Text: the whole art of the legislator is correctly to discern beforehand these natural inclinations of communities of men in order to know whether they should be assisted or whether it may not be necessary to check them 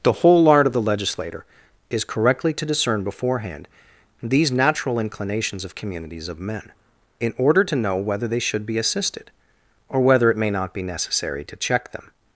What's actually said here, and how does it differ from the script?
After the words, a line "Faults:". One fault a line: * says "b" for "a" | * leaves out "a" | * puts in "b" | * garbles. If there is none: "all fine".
the whole art of the legislator is correctly to discern beforehand these natural inclinations of communities of men in order to know whether they should be assisted or whether it may not be necessary to check them
Faults:
all fine